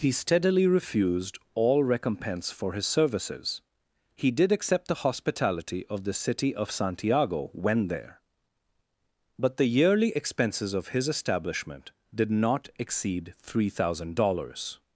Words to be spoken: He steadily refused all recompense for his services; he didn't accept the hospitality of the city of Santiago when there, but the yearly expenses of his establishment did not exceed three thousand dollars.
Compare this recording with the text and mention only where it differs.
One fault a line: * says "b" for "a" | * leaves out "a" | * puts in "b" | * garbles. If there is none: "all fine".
* says "did" for "didn't"